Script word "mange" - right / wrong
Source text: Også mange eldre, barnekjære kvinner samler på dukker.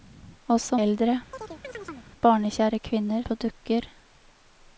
wrong